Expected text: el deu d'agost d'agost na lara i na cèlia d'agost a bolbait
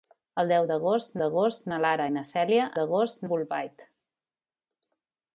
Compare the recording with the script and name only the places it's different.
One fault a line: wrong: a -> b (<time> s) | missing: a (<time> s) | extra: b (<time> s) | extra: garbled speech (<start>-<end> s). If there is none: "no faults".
no faults